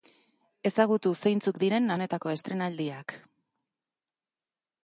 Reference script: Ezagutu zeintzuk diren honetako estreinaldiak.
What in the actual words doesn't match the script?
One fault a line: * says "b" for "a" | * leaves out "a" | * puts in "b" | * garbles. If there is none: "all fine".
all fine